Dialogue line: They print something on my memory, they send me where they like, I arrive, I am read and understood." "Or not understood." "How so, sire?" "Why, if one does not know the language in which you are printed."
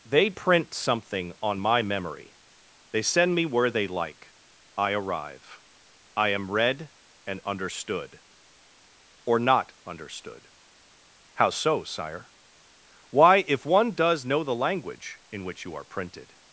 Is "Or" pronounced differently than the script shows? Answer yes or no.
no